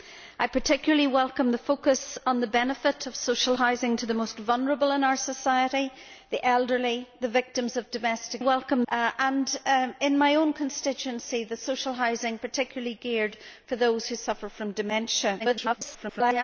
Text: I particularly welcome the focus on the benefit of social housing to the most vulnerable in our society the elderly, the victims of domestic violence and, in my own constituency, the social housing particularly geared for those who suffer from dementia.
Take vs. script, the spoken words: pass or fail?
fail